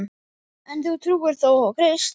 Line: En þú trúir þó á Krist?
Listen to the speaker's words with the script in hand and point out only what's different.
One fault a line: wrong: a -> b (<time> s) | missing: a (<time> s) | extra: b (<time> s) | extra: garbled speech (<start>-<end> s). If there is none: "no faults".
no faults